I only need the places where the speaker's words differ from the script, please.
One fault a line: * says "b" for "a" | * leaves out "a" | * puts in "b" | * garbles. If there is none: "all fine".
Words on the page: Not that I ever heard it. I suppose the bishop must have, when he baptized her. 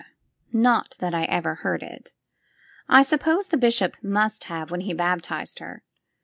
all fine